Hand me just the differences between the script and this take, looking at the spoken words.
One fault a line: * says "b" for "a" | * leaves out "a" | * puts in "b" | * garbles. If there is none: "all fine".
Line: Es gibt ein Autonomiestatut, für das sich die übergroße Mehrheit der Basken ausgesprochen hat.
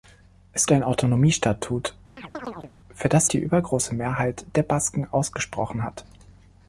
* leaves out "gibt"
* leaves out "sich"